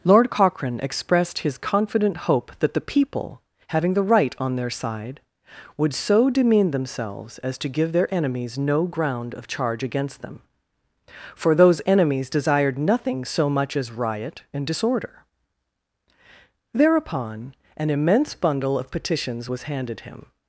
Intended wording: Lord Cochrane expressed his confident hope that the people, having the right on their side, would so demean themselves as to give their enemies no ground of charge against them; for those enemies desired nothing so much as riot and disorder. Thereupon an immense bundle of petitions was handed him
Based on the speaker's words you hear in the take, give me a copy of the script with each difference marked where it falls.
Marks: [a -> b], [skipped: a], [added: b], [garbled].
Lord Cochrane expressed his confident hope that the people, having the right on their side, would so demean themselves as to give their enemies no ground of charge against them; for those enemies desired nothing so much as riot and disorder. Thereupon an immense bundle of petitions was handed him